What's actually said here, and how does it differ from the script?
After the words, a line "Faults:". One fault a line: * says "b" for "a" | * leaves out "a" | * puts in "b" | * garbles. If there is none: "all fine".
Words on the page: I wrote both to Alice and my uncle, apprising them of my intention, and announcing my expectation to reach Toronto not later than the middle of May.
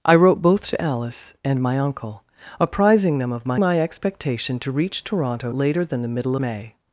I wrote both to Alice and my uncle, apprising them of my my expectation to reach Toronto later than the middle May.
Faults:
* leaves out "intention and announcing"
* leaves out "not"
* leaves out "of"